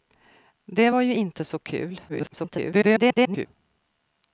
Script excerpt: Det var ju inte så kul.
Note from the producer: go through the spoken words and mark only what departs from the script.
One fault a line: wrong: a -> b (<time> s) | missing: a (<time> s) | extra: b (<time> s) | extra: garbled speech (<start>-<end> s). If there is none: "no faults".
extra: garbled speech (2.1-3.5 s)